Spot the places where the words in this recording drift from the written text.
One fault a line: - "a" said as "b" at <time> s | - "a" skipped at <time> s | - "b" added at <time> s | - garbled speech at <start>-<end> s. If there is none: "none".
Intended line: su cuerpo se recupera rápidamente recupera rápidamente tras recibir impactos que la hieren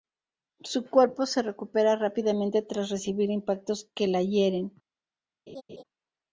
- "recupera rápidamente" skipped at 2.6 s